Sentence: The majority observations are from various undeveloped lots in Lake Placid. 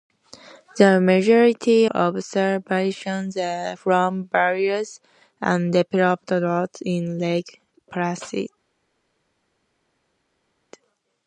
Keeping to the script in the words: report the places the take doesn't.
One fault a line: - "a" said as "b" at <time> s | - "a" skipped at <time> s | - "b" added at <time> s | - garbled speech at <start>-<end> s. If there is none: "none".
none